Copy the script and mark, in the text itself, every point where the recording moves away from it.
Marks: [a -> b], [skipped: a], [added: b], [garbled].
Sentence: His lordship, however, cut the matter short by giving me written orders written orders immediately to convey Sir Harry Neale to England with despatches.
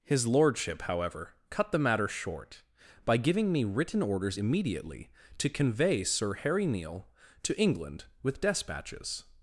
His lordship, however, cut the matter short by giving me written orders [skipped: written orders] immediately to convey Sir Harry Neale to England with despatches.